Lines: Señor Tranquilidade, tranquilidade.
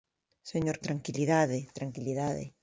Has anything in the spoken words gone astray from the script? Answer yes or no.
no